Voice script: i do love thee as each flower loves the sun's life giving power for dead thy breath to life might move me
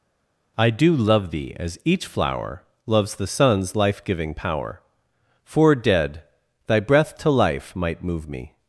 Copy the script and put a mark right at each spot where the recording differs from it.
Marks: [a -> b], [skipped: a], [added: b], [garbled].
i do love thee as each flower loves the sun's life giving power for dead thy breath to life might move me